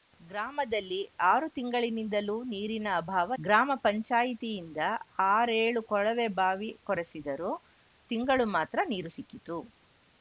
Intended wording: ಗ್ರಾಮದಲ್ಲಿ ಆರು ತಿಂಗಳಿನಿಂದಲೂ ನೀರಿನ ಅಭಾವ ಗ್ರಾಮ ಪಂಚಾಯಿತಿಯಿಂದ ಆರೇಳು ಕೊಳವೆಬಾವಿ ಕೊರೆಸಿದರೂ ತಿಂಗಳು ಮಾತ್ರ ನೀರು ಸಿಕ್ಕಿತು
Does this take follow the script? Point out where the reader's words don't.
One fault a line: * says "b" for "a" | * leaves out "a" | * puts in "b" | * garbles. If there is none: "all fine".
all fine